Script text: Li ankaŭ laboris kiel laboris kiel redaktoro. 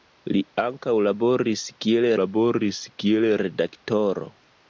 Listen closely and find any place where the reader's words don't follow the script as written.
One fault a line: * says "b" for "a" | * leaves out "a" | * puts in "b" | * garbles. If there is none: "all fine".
all fine